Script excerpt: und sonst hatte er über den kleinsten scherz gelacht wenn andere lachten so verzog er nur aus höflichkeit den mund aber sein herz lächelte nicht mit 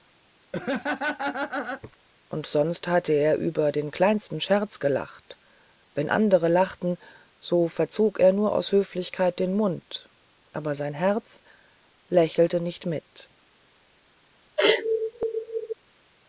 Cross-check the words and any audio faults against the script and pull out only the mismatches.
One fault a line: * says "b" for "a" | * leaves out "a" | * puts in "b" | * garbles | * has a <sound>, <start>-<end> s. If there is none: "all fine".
* has a laugh, 0.5-2.0 s
* has a sneeze, 14.6-15.7 s